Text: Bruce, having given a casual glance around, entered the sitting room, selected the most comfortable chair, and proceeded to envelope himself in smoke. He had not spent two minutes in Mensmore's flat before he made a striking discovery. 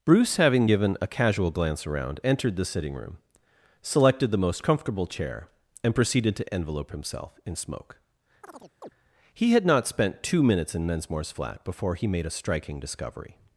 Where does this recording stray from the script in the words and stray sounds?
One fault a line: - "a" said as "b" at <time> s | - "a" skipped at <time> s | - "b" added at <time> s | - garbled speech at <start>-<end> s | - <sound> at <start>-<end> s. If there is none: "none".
- chirp at 8.4-8.9 s